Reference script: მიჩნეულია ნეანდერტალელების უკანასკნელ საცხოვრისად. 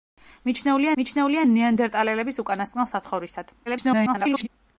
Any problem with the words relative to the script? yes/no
yes